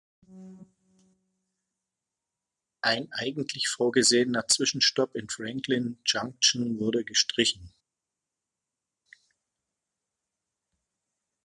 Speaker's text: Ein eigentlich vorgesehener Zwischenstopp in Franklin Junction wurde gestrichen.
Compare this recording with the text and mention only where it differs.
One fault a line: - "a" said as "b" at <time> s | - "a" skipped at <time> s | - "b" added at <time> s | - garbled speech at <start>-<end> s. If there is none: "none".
none